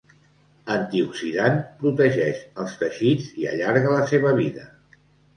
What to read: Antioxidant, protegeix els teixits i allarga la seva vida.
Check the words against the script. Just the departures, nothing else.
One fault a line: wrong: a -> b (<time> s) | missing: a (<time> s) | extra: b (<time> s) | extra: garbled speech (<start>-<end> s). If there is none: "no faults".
no faults